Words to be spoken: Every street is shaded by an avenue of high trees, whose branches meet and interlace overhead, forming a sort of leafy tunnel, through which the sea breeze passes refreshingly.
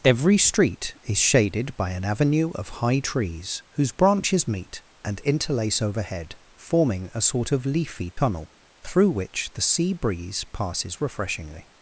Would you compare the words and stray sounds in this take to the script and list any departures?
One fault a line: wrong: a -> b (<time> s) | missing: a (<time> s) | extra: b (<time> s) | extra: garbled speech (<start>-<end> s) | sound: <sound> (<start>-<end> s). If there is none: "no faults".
sound: dropout (8.1-8.2 s)